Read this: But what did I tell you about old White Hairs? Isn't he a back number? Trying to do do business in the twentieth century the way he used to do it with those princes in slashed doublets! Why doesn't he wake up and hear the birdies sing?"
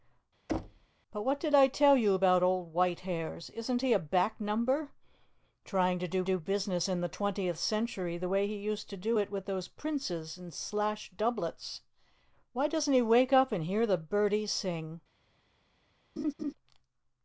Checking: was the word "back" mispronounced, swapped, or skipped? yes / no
no